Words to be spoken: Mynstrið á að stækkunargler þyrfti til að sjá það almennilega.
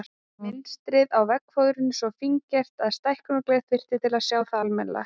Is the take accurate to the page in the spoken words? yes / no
no